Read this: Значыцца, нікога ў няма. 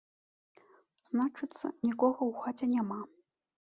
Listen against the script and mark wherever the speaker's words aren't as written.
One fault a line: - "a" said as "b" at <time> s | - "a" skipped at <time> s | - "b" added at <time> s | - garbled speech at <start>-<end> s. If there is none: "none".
- "хаце" added at 2.5 s